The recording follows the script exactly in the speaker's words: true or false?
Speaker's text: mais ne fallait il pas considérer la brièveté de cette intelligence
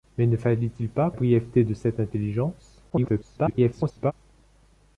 false